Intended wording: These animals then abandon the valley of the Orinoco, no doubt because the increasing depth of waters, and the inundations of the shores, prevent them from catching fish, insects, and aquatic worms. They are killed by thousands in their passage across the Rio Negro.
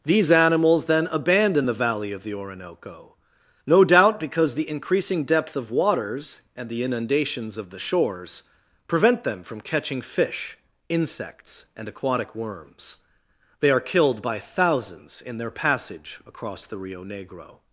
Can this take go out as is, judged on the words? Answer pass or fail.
pass